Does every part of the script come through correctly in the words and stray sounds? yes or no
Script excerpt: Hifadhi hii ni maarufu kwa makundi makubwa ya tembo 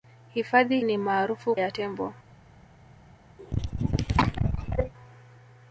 no